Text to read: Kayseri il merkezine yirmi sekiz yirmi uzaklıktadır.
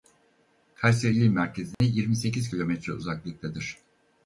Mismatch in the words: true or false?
true